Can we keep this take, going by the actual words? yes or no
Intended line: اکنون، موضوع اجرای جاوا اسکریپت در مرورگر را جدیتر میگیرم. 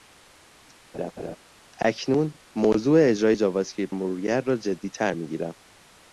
no